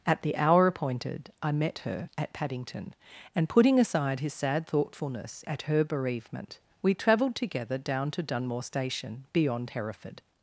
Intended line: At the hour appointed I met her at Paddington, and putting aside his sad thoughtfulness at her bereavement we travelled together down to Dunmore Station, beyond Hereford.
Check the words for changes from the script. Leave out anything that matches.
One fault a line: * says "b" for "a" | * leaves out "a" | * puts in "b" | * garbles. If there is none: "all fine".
all fine